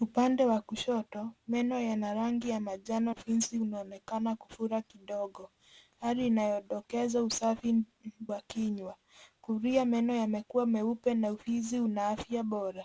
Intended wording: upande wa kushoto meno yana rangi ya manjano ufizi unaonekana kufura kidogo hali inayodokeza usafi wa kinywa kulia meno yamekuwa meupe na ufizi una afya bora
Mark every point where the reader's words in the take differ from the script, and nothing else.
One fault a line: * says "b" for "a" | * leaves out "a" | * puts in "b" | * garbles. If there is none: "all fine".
all fine